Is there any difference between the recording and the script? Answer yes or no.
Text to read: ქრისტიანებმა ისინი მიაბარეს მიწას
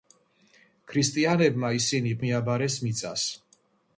no